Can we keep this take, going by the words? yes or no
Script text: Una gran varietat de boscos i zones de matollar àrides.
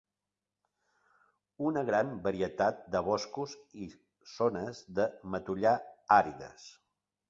yes